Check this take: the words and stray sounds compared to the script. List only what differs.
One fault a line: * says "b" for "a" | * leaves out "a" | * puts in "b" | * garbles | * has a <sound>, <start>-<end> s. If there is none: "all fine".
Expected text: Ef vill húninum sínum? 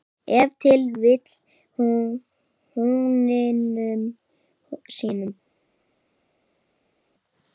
* puts in "til"